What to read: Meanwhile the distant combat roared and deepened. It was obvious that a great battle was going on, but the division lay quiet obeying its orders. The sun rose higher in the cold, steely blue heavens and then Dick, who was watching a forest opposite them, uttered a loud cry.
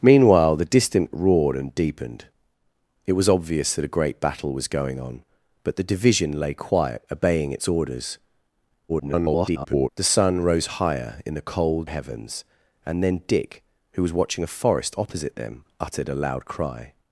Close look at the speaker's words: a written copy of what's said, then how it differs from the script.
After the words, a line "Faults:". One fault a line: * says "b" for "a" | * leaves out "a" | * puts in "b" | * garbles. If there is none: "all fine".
Meanwhile the distant roared and deepened. It was obvious that a great battle was going on, but the division lay quiet obeying its orders. [garbled] The sun rose higher in the cold, heavens and then Dick, who was watching a forest opposite them, uttered a loud cry.
Faults:
* leaves out "combat"
* garbles
* leaves out "steely blue"